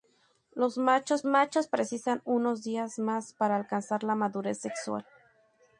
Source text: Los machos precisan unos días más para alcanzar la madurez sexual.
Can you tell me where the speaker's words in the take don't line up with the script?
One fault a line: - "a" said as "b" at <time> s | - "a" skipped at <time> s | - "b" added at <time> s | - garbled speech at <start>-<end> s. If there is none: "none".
- "machos" added at 1.3 s